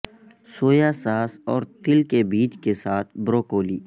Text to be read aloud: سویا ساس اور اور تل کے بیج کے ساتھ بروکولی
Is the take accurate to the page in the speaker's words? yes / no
no